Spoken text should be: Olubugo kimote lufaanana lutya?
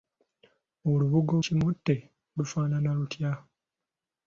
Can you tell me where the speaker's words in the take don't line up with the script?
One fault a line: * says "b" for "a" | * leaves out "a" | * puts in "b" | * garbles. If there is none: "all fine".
all fine